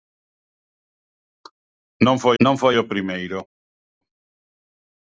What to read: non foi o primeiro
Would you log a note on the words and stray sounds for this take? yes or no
yes